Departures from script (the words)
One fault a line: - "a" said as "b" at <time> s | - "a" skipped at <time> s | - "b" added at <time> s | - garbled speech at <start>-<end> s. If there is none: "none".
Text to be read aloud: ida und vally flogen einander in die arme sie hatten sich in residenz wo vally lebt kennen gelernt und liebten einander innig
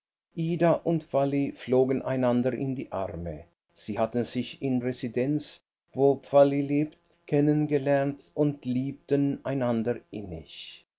none